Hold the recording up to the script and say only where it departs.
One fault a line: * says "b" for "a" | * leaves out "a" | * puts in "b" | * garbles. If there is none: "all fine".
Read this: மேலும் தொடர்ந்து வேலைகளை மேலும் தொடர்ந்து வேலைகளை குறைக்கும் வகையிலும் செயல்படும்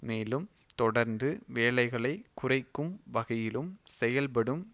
* leaves out "மேலும் தொடர்ந்து வேலைகளை"